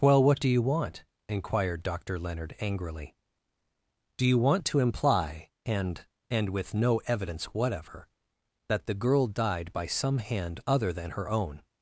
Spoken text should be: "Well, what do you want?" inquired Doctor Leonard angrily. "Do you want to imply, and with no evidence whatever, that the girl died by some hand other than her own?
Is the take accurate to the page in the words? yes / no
no